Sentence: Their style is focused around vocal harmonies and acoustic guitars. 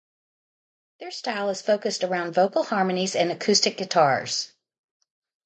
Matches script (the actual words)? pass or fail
pass